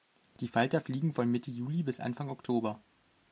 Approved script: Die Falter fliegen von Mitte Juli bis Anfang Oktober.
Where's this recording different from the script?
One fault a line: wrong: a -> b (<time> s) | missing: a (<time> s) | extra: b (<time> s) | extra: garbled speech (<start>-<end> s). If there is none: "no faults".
no faults